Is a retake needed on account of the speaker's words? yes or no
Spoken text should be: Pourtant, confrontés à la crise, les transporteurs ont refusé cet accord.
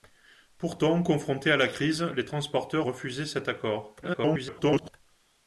yes